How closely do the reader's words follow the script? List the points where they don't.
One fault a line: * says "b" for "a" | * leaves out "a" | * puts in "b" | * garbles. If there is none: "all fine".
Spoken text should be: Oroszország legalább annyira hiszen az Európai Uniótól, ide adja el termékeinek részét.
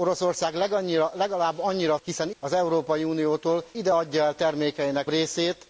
all fine